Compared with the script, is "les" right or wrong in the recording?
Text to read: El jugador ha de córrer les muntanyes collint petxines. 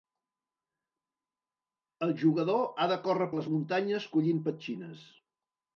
right